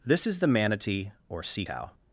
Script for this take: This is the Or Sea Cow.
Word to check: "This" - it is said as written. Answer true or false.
true